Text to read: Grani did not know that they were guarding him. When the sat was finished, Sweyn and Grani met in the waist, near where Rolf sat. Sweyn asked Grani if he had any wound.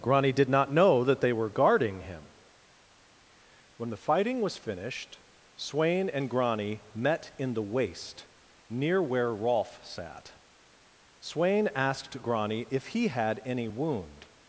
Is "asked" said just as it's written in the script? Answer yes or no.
yes